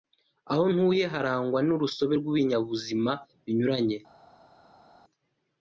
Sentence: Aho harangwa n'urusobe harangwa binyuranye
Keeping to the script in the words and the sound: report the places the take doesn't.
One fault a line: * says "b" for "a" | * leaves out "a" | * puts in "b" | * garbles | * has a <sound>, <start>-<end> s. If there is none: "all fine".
* puts in "ntuye"
* says "rw'ibinyabuzima" for "harangwa"